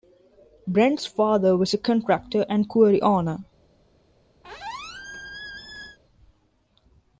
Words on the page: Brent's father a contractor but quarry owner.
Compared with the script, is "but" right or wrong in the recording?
wrong